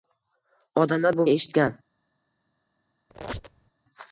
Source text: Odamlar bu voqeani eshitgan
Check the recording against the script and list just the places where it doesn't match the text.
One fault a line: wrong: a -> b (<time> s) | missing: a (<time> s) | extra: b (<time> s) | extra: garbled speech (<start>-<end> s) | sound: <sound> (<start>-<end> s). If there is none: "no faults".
missing: voqeani (1.2 s)
sound: squeak (3.1-3.7 s)